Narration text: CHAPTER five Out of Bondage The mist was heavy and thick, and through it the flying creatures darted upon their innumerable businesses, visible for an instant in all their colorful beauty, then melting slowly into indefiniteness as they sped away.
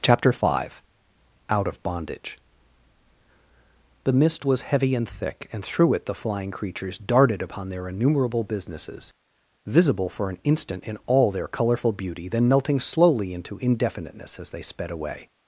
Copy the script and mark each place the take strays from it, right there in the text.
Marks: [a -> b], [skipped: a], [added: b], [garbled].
CHAPTER five Out of Bondage The mist was heavy and thick, and through it the flying creatures darted upon their innumerable businesses, visible for an instant in all their colorful beauty, then melting slowly into indefiniteness as they sped away.